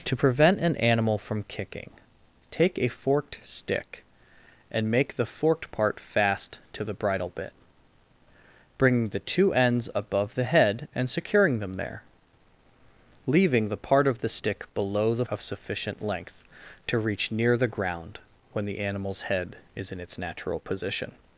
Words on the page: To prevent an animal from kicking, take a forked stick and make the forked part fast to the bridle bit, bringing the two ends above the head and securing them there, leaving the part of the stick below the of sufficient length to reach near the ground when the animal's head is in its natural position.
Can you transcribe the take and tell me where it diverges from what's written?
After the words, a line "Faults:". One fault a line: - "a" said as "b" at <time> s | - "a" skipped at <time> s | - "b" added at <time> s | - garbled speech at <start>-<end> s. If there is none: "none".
To prevent an animal from kicking, take a forked stick and make the forked part fast to the bridle bit, bringing the two ends above the head and securing them there, leaving the part of the stick below the of sufficient length to reach near the ground when the animal's head is in its natural position.
Faults:
none